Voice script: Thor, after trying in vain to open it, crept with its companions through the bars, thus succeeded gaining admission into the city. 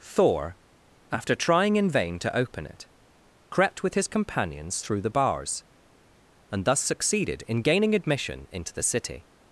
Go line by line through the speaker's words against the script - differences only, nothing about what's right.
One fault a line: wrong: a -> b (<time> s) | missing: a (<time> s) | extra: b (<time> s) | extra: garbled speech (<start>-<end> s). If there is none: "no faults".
wrong: its -> his (4.0 s)
extra: and (6.5 s)
extra: in (7.5 s)